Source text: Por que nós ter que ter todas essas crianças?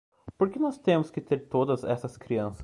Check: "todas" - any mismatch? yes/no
no